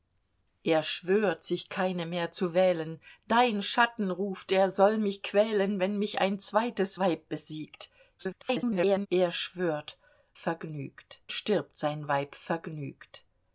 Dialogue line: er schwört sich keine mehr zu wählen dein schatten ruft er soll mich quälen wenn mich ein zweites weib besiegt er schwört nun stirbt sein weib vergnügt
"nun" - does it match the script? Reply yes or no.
no